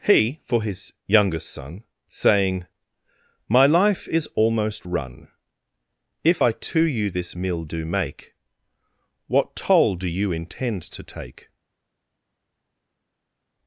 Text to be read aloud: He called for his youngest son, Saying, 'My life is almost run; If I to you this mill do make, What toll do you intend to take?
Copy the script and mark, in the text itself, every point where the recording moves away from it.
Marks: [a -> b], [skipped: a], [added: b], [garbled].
He [skipped: called] for his youngest son, Saying, 'My life is almost run; If I to you this mill do make, What toll do you intend to take?